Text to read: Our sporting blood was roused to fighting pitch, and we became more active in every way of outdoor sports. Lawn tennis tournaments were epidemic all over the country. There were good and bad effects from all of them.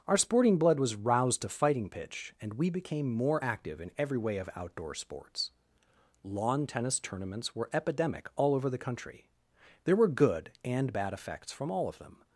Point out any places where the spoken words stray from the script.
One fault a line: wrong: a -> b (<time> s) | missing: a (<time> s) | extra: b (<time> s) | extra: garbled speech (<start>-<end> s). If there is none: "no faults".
no faults